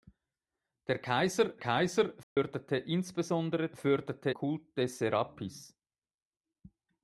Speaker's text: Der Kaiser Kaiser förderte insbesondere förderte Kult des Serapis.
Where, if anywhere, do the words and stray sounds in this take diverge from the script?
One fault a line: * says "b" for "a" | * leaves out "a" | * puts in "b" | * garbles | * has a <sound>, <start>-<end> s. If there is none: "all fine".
* has a dropout, 2.2-2.4 s